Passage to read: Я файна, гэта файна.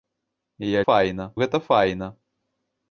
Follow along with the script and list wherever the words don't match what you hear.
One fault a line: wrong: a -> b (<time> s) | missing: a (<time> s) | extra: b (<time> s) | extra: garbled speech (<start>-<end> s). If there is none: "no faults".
no faults